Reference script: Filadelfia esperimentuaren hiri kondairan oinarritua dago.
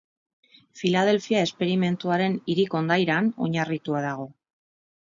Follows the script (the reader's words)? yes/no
yes